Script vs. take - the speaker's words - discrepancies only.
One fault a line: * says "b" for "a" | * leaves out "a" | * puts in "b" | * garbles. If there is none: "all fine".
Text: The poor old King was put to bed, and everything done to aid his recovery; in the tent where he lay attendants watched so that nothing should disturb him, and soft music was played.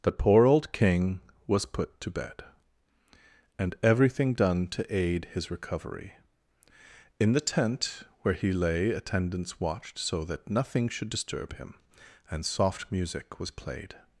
all fine